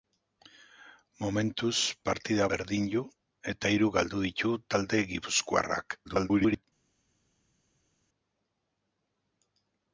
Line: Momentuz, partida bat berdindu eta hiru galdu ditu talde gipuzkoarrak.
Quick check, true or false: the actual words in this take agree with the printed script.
false